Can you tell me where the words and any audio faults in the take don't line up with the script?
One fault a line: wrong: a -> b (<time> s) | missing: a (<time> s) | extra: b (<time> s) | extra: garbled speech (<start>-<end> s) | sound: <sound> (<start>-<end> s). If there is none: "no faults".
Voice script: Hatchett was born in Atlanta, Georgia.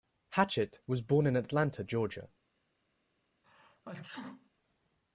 sound: sneeze (3.4-4.5 s)